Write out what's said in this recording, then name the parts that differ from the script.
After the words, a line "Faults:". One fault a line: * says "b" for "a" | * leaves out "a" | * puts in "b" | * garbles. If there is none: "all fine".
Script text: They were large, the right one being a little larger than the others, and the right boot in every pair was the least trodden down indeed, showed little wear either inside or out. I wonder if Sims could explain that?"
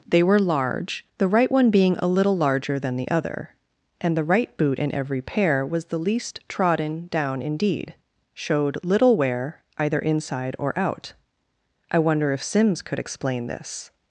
They were large, the right one being a little larger than the other, and the right boot in every pair was the least trodden down indeed, showed little wear either inside or out. I wonder if Sims could explain this?"
Faults:
* says "other" for "others"
* says "this" for "that"